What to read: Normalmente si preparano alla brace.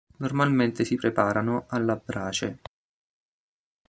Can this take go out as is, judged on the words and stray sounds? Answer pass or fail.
pass